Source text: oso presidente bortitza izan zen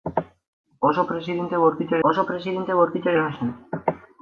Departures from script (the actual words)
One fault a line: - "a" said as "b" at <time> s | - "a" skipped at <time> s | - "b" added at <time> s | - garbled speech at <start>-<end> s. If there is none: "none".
- "oso presidente bortitza" added at 2.1 s